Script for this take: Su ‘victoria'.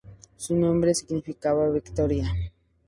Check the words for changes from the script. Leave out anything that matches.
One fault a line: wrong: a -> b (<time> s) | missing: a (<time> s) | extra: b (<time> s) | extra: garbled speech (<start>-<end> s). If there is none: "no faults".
extra: nombre significaba (0.6 s)